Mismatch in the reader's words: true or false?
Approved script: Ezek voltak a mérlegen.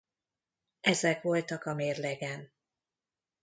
false